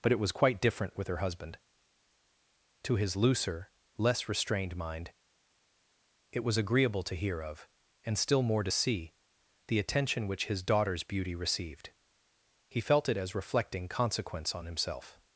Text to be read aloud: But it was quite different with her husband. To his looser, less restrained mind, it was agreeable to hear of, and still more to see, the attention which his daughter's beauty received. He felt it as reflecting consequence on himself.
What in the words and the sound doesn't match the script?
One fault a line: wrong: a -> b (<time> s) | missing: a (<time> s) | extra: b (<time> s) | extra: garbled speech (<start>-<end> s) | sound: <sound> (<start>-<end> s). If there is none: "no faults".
no faults